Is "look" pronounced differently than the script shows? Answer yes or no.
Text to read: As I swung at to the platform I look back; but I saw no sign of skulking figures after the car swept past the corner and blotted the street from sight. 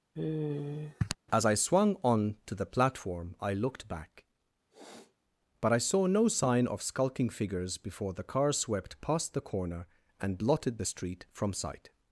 yes